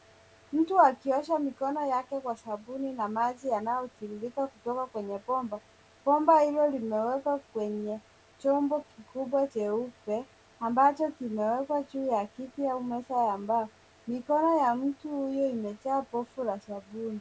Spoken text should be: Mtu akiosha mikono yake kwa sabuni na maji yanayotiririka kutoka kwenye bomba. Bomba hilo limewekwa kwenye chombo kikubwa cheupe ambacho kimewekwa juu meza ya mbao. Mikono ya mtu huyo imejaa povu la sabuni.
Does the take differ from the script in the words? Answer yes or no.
yes